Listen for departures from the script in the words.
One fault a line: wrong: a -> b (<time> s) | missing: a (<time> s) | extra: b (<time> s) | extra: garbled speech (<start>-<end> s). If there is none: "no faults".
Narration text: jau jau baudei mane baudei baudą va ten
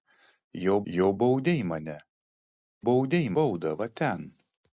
no faults